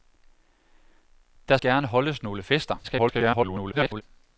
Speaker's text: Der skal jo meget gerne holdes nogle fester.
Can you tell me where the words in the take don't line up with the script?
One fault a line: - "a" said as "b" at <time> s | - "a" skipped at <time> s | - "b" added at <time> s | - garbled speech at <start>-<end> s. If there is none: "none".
- "skal jo meget" skipped at 1.6 s
- garbled speech at 2.8-4.0 s